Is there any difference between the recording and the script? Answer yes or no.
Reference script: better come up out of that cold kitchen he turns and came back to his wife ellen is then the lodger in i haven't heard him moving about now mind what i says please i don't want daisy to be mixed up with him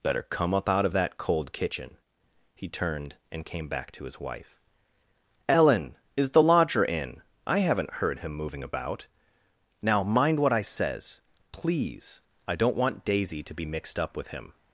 yes